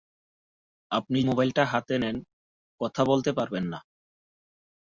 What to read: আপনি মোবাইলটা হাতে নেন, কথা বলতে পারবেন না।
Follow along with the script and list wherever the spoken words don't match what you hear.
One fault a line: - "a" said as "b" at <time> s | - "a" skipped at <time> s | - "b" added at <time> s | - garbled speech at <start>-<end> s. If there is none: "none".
none